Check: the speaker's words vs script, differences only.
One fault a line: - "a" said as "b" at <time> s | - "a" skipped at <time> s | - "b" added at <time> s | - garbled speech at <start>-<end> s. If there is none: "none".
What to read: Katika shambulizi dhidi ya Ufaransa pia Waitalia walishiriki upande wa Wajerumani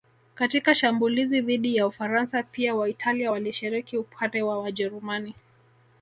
none